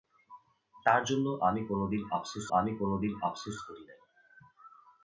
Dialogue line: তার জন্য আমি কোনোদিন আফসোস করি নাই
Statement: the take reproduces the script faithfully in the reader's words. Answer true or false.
false